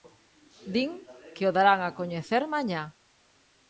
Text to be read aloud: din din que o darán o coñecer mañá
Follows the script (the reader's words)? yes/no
no